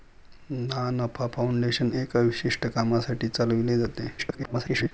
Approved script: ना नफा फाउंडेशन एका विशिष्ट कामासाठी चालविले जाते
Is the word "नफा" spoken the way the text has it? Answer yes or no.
yes